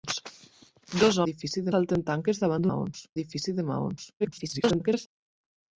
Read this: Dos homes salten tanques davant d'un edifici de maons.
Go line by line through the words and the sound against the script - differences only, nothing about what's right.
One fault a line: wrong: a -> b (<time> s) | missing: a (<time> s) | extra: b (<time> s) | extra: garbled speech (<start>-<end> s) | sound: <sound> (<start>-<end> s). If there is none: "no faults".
wrong: homes -> edifici (1.3 s)
wrong: d'un -> maons (2.7 s)
extra: garbled speech (4.2-5.1 s)